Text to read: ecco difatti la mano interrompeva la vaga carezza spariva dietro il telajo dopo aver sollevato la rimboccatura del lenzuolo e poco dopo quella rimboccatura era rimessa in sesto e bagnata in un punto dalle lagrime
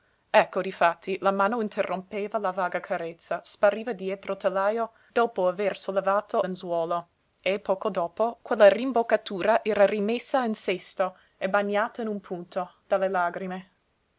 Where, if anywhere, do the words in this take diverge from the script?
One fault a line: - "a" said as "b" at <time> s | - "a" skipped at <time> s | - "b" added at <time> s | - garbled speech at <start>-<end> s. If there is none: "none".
- "la rimboccatura del" skipped at 6.5 s